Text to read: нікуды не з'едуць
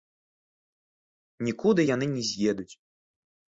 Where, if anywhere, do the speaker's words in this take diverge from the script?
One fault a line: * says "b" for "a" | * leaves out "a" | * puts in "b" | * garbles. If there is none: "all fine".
* puts in "яны"